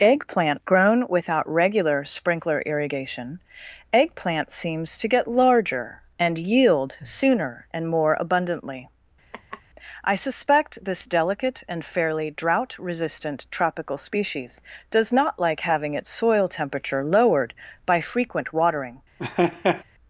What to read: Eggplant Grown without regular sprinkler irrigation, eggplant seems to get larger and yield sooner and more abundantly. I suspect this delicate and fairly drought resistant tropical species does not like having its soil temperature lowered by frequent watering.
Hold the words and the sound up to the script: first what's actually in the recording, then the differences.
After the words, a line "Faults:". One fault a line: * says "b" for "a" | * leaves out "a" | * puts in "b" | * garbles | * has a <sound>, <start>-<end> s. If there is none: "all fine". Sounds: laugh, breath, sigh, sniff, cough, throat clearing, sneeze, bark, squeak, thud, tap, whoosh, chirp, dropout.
Eggplant Grown without regular sprinkler irrigation, eggplant seems to get larger and yield sooner and more abundantly. I suspect this delicate and fairly drought resistant tropical species does not like having its soil temperature lowered by frequent watering.
Faults:
* has a laugh, 9.3-9.6 s
* has a laugh, 19.2-19.8 s